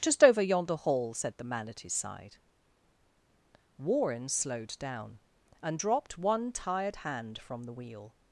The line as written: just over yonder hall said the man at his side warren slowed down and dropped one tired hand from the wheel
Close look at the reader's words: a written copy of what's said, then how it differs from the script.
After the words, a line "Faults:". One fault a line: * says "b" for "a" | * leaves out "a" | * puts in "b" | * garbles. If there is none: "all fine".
just over yonder hall said the man at his side warren slowed down and dropped one tired hand from the wheel
Faults:
all fine